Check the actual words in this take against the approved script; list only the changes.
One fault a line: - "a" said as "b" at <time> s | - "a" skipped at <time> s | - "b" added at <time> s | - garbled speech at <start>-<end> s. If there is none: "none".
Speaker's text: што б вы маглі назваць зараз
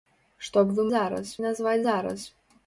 - "маглі" said as "зараз" at 1.0 s